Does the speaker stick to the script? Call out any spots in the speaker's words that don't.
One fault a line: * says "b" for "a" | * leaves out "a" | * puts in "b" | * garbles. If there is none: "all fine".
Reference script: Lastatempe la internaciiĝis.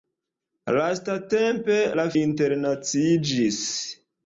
all fine